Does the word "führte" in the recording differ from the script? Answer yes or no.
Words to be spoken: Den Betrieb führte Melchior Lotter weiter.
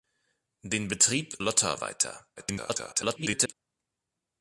yes